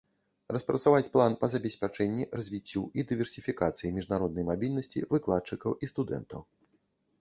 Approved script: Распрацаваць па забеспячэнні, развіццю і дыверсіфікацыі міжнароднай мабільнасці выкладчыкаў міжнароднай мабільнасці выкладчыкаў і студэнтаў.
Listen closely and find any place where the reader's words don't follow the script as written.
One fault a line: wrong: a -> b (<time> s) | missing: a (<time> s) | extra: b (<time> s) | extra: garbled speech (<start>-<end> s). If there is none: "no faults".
extra: план (1.1 s)
missing: міжнароднай мабільнасці выкладчыкаў (5.7 s)